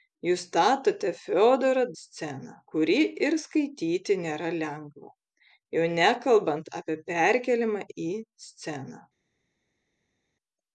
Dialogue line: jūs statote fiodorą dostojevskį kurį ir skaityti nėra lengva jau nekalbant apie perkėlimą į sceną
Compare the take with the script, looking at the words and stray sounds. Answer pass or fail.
fail